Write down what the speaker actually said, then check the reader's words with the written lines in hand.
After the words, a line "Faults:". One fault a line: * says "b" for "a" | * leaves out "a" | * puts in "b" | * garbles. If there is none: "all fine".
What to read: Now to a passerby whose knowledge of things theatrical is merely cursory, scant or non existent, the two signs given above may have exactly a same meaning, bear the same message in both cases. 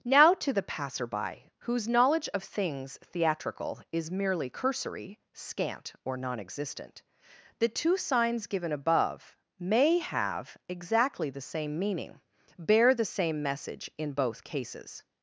Now to the passerby whose knowledge of things theatrical is merely cursory, scant or non existent, the two signs given above may have exactly the same meaning, bear the same message in both cases.
Faults:
* says "the" for "a"
* says "the" for "a"